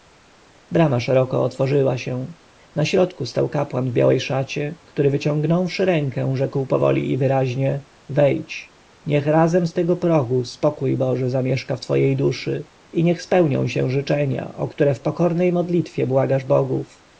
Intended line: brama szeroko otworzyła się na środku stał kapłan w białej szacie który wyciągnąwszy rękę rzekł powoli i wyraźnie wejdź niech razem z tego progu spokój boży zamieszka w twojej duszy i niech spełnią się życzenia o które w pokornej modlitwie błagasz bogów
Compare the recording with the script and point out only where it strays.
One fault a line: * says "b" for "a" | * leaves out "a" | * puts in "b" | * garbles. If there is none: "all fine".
all fine